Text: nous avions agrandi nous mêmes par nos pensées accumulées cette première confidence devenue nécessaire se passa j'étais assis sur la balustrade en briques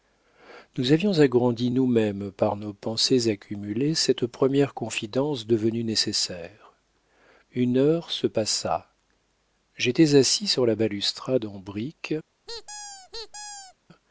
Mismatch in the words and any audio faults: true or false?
true